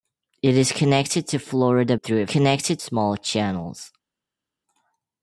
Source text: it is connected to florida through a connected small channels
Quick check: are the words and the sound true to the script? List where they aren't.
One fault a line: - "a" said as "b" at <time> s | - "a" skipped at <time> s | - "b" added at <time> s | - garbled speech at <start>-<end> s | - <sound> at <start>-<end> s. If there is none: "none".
none